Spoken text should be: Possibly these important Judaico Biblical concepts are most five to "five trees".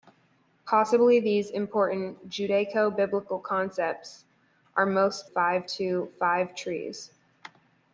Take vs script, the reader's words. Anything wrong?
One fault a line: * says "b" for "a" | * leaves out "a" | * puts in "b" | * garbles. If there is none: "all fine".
all fine